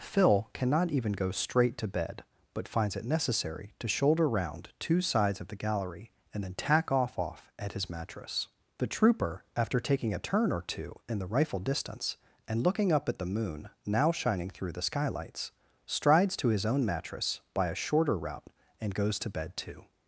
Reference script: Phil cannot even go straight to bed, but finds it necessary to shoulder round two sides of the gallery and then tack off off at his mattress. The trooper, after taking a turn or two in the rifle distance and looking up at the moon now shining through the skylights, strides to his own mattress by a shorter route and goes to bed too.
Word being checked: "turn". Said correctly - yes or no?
yes